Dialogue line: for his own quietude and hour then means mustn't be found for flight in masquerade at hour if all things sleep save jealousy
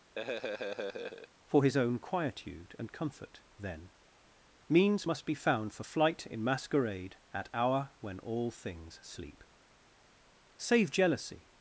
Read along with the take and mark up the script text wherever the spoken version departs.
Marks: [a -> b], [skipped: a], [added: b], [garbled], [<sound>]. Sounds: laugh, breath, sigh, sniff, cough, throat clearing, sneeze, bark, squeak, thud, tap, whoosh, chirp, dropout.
[laugh] for his own quietude and [hour -> comfort] then means [mustn't -> must] be found for flight in masquerade at hour [if -> when] all things sleep save jealousy